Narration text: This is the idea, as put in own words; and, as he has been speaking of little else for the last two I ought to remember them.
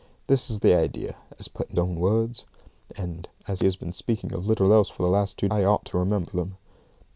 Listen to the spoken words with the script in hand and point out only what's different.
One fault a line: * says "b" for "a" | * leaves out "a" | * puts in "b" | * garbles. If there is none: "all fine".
all fine